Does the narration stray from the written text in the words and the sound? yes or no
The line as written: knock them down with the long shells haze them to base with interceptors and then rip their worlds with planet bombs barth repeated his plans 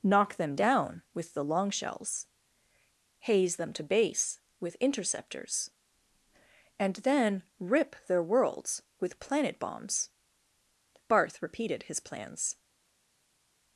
no